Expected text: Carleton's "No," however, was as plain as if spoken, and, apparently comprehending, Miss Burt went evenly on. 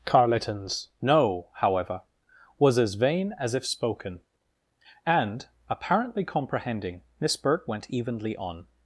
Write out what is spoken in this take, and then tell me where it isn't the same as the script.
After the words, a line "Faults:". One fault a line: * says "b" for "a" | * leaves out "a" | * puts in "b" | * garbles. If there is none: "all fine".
Carleton's "No," however, was as vain as if spoken, and, apparently comprehending, Miss Burt went evenly on.
Faults:
* says "vain" for "plain"